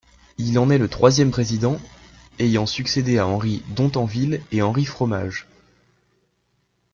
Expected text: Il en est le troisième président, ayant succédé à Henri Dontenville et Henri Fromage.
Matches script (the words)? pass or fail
pass